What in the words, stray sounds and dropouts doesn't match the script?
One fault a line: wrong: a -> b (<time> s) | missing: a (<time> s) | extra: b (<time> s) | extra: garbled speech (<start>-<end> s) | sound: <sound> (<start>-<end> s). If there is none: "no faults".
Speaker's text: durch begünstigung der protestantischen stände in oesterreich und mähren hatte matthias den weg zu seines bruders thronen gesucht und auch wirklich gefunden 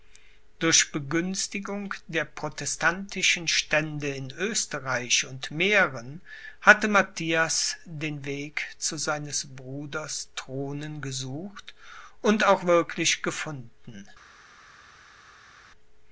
no faults